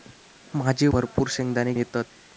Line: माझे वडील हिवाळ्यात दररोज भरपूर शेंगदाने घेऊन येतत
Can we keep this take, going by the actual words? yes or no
no